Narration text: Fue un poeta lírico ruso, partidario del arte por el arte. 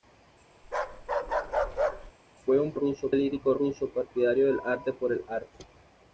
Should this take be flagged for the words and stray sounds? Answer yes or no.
yes